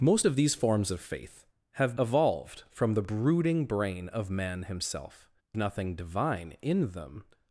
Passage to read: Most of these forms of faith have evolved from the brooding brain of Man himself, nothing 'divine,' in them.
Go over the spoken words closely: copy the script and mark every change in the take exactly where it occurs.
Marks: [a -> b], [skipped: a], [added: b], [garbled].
Most of these forms of faith have evolved from the brooding brain of Man himself, nothing 'divine,' in them.